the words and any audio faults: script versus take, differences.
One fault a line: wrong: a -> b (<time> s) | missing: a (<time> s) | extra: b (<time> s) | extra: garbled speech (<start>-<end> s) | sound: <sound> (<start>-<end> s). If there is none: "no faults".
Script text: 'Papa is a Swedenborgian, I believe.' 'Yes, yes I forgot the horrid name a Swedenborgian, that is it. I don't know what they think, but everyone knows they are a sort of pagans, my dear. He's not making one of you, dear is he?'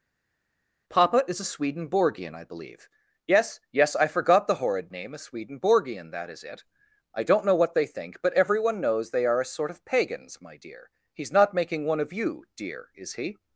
no faults